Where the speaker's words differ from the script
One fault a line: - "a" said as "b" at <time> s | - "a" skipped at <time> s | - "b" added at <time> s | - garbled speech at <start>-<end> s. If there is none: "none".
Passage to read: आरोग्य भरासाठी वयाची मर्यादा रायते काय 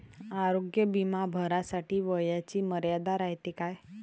- "बिमा" added at 0.8 s